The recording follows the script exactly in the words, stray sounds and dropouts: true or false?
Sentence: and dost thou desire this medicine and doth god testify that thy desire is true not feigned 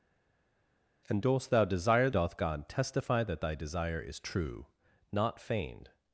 false